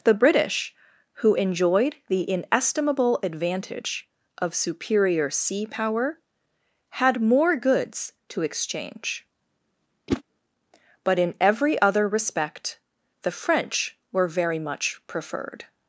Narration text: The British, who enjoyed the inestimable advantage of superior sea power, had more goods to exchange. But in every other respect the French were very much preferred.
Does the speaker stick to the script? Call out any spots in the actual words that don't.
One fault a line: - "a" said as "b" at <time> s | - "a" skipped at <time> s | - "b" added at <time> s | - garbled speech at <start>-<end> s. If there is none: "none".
none